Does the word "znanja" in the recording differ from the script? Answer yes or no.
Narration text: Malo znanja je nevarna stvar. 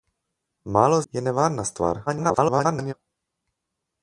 yes